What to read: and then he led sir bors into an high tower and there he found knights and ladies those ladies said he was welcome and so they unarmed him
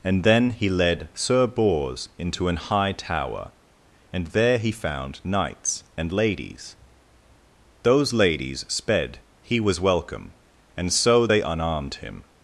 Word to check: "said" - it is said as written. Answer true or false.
false